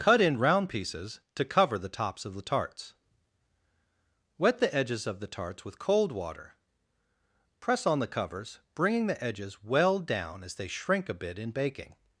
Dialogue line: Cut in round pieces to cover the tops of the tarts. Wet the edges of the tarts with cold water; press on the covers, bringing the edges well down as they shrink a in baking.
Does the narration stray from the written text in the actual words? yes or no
yes